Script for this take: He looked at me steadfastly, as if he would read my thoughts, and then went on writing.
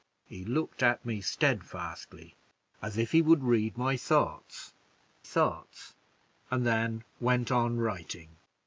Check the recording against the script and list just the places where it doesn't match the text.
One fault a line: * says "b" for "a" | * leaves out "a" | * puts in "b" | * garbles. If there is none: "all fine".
* puts in "thoughts"